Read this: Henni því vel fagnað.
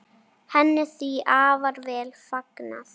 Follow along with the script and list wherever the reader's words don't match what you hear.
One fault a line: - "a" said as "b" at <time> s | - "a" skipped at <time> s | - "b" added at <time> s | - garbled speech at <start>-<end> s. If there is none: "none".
- "afar" added at 1.4 s